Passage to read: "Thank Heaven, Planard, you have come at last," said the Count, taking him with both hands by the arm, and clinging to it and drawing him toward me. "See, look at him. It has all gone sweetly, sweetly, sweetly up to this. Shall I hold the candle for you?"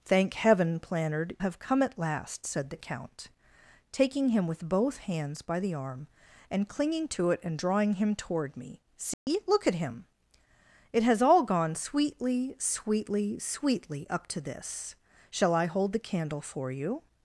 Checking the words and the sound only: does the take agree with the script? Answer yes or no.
no